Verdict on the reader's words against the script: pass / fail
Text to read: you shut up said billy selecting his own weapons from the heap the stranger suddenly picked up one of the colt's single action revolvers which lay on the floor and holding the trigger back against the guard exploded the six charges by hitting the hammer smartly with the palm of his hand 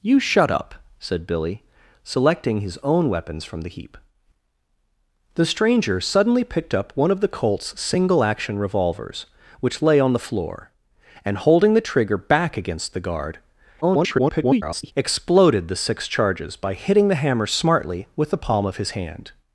fail